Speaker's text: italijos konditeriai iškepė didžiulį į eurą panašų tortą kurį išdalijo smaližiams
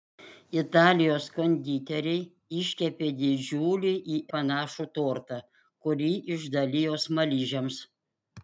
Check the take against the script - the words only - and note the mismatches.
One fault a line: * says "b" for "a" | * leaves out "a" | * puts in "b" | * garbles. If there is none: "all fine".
* leaves out "eurą"